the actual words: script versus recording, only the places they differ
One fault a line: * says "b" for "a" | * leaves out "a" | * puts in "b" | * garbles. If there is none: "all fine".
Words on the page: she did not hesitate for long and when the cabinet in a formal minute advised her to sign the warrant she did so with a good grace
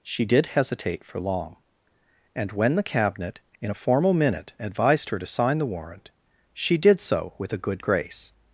* leaves out "not"